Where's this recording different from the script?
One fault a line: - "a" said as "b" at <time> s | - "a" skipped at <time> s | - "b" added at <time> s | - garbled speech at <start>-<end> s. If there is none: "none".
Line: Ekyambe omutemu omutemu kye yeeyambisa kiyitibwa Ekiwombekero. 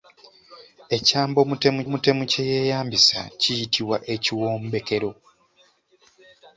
none